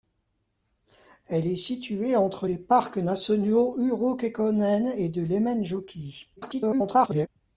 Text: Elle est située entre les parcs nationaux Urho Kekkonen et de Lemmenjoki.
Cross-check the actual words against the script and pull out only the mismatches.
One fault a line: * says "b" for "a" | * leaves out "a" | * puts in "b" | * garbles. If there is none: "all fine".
* garbles